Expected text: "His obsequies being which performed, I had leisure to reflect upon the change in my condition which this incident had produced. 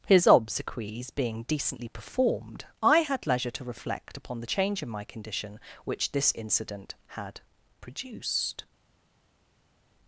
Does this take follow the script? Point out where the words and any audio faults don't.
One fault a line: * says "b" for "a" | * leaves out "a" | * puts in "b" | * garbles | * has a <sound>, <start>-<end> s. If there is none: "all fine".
* says "decently" for "which"